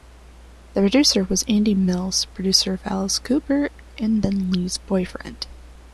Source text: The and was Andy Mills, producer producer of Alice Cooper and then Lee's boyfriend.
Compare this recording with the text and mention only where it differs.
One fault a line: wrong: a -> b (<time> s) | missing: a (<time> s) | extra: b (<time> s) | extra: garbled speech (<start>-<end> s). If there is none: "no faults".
wrong: and -> producer (0.8 s)
missing: producer (2.7 s)